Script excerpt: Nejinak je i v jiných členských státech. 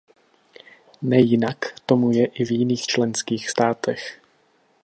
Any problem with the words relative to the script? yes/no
yes